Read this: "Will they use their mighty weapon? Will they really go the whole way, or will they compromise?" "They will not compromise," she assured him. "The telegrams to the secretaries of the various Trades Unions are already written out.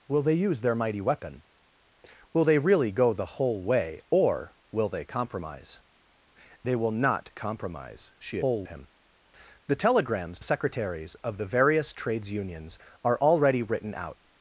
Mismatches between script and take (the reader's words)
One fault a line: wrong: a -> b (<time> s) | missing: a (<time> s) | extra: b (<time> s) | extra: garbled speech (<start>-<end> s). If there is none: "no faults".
wrong: assured -> whole (8.4 s)
missing: to the (10.4 s)